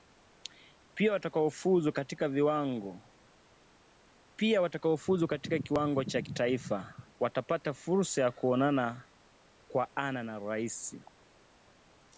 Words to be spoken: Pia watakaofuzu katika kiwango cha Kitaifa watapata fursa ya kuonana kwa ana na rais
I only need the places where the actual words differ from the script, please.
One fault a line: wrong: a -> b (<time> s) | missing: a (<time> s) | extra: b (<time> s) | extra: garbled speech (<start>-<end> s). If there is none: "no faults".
no faults